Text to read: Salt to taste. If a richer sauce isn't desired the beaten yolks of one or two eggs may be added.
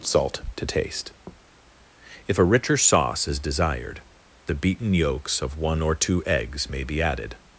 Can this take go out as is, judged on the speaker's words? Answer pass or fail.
fail